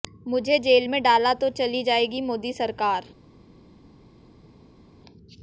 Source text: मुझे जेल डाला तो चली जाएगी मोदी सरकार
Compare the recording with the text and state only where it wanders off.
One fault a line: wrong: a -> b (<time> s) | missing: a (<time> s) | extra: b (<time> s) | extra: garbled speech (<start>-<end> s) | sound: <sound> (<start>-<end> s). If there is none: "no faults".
extra: में (0.9 s)